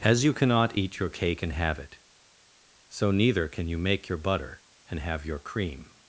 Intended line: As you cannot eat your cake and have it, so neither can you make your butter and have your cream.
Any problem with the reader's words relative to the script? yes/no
no